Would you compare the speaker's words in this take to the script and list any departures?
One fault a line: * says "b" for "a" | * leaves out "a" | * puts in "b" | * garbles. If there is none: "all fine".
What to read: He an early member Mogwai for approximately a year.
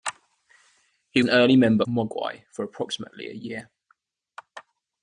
all fine